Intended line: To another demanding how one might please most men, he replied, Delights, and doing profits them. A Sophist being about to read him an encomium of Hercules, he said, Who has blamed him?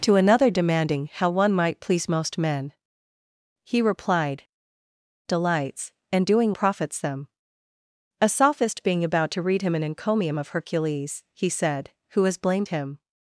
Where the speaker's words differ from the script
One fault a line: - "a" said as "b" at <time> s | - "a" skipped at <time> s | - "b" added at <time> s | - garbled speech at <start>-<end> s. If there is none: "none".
none